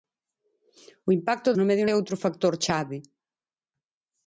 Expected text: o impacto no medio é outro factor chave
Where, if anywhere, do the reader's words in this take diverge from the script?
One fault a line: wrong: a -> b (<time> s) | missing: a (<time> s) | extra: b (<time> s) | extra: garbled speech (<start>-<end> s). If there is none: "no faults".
no faults